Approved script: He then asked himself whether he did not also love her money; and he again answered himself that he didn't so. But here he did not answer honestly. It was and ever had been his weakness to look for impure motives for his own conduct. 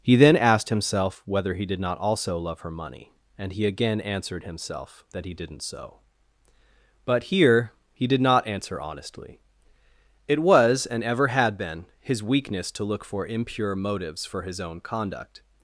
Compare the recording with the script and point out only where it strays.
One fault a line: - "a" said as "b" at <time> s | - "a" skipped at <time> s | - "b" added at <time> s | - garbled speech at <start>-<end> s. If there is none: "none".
none